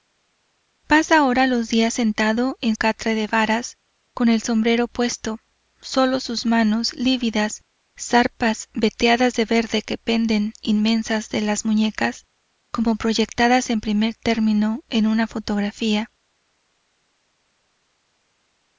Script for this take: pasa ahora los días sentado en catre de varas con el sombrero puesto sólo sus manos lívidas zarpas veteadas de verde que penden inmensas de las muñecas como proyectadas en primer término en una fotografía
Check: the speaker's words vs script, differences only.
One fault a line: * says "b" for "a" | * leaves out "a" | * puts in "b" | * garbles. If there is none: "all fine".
all fine